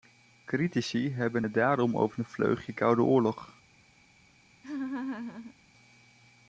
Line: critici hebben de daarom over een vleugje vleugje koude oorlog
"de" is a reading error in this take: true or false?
true